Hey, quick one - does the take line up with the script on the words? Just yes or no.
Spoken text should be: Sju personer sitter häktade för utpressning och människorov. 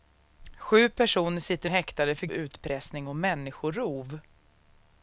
yes